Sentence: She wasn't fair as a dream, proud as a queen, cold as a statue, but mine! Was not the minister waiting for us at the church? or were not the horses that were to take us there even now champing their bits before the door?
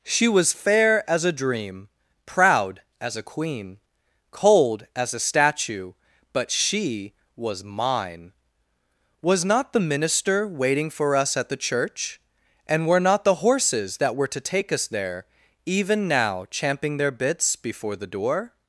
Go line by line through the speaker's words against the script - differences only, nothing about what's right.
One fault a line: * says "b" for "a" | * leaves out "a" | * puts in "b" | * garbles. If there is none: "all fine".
* says "was" for "wasn't"
* puts in "she was"
* says "and" for "or"